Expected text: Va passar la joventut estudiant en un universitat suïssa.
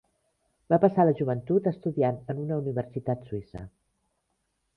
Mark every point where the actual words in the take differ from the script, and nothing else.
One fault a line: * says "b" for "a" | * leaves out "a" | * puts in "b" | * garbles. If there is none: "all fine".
* says "una" for "un"